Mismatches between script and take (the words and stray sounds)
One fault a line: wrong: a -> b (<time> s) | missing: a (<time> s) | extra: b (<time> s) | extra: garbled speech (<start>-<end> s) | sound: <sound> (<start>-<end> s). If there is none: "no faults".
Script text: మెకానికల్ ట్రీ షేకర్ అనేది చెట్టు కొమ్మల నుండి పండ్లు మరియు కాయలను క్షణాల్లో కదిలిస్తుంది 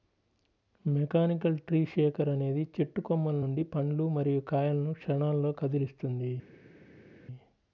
no faults